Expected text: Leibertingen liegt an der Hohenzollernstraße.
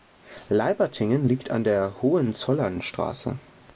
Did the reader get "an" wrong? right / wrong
right